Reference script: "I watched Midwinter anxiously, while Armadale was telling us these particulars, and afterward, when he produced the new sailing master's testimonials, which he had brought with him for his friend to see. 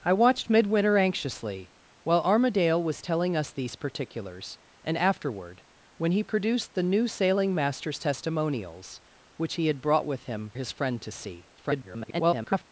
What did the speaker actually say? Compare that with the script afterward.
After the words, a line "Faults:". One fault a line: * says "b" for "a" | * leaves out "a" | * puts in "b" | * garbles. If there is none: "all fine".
"I watched Midwinter anxiously, while Armadale was telling us these particulars, and afterward, when he produced the new sailing master's testimonials, which he had brought with him his friend to see. [garbled]
Faults:
* leaves out "for"
* garbles